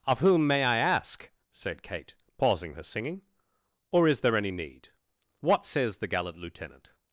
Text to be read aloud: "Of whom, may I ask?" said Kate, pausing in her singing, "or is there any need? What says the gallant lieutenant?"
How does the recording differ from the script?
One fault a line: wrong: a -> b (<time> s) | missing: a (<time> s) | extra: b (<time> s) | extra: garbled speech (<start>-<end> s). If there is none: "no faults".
missing: in (2.7 s)